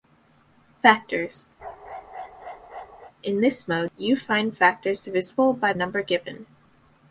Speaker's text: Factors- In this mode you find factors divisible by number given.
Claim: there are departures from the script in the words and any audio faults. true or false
true